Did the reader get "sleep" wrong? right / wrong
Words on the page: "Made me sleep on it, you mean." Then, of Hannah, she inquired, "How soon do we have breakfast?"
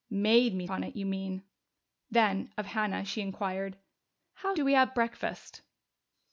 wrong